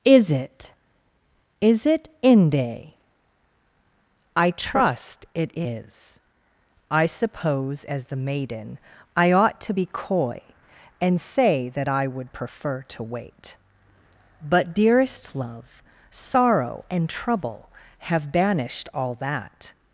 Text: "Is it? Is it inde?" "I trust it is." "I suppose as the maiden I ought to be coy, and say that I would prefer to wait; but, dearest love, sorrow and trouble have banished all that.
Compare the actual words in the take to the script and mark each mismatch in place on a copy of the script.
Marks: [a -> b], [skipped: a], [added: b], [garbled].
"Is it? Is it inde?" "I trust it is." "I suppose as the maiden I ought to be coy, and say that I would prefer to wait; but, dearest love, sorrow and trouble have banished all that.